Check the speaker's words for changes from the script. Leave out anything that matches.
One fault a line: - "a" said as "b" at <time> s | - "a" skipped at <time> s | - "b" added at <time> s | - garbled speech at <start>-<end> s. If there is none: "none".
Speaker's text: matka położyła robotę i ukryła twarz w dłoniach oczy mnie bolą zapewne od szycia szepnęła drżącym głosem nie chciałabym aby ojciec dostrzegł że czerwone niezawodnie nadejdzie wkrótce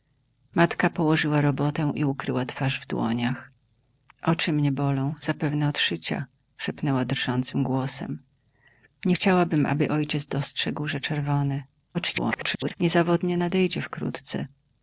- garbled speech at 11.9-12.8 s